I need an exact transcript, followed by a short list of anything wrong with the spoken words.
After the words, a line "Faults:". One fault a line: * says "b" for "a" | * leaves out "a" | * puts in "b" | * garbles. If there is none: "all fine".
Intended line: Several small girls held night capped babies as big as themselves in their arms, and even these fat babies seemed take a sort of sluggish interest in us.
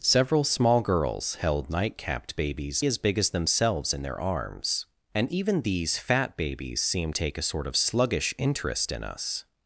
Several small girls held night capped babies as big as themselves in their arms, and even these fat babies seemed take a sort of sluggish interest in us.
Faults:
all fine